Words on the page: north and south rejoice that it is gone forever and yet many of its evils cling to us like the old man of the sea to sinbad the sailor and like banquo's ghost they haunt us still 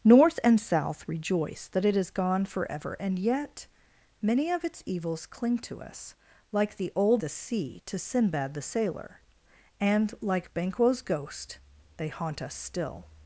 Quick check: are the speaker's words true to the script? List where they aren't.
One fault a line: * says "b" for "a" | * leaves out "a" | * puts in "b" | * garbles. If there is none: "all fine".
* leaves out "man of"